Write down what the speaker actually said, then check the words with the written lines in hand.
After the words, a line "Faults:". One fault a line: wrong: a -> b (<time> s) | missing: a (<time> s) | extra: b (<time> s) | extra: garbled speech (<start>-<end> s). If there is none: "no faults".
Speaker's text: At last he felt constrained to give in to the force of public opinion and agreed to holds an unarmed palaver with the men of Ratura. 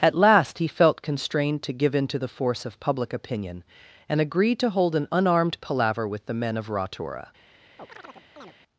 At last he felt constrained to give in to the force of public opinion and agreed to hold an unarmed palaver with the men of Ratura.
Faults:
wrong: holds -> hold (4.7 s)